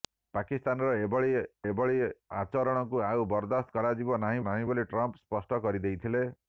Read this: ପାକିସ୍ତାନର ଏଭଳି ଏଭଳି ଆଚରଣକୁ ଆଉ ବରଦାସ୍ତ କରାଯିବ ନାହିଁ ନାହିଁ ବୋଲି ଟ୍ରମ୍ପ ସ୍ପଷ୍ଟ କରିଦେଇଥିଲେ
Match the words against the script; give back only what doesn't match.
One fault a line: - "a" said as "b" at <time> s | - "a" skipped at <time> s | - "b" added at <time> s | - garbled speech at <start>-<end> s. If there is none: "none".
none